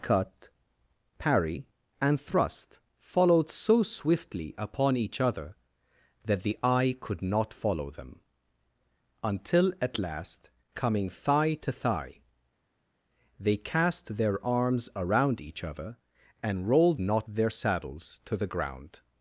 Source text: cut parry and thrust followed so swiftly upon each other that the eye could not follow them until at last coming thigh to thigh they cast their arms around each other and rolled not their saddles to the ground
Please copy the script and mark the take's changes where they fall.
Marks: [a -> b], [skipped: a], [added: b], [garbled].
cut parry and thrust followed so swiftly upon each other that the eye could not follow them until at last coming thigh to thigh they cast their arms around each other and rolled not their saddles to the ground